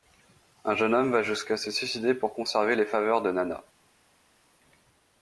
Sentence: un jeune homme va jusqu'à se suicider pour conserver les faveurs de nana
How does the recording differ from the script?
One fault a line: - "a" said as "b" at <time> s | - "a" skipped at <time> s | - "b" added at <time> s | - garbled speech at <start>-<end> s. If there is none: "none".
none